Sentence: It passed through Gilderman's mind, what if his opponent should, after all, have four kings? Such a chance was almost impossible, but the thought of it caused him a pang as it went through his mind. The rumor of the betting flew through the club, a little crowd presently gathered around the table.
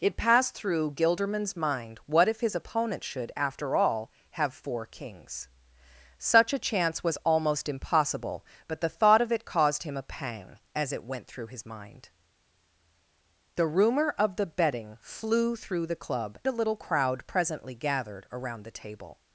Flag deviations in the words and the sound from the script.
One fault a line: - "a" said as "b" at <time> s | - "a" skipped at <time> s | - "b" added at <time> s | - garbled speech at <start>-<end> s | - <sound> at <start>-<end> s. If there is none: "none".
none